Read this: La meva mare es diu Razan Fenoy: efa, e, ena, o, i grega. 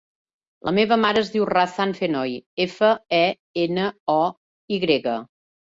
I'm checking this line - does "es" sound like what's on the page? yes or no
yes